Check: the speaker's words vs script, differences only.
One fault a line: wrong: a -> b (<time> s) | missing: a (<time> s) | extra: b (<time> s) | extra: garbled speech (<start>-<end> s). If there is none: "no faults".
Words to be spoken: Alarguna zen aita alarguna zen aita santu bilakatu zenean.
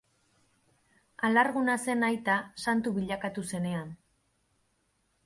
missing: alarguna zen aita (2.4 s)